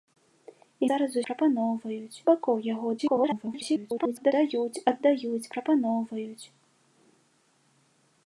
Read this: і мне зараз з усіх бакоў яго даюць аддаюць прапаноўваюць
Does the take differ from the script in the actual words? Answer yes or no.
yes